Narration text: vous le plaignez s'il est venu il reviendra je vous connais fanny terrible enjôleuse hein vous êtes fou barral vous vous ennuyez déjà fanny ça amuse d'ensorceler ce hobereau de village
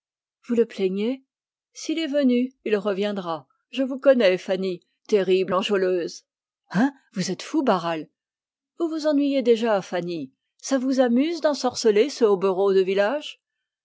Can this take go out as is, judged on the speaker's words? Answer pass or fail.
fail